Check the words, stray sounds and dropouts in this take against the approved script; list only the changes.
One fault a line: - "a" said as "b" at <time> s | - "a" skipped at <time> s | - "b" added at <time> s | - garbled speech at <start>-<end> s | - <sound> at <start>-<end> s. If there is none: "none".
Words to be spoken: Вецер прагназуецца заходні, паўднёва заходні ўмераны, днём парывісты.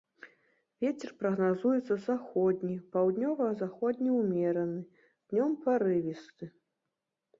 none